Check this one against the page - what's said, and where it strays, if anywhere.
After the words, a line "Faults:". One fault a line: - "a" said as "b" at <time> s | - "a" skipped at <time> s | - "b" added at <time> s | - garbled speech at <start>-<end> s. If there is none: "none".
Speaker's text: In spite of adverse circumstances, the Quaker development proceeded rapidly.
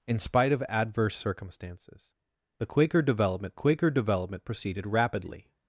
In spite of adverse circumstances, the Quaker development Quaker development proceeded rapidly.
Faults:
- "Quaker development" added at 3.5 s